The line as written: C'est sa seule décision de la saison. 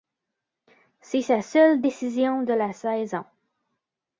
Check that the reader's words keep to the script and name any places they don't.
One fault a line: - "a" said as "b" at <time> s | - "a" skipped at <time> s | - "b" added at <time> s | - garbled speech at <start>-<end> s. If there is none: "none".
none